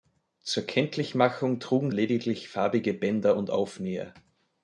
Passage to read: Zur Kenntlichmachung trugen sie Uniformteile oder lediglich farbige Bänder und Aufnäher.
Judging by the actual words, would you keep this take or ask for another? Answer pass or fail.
fail